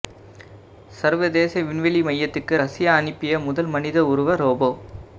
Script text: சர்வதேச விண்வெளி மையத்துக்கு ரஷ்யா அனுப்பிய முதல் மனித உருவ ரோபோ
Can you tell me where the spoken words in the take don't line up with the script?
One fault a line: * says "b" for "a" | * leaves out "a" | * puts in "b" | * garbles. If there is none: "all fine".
all fine